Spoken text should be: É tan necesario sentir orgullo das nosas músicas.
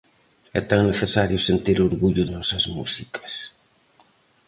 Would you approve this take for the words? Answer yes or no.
no